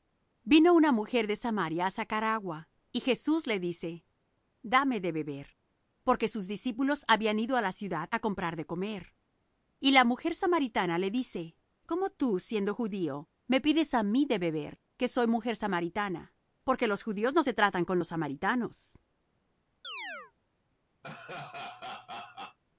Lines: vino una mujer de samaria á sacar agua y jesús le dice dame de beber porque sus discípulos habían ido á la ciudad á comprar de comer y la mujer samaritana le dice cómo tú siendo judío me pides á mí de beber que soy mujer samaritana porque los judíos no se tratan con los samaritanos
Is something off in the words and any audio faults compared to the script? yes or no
yes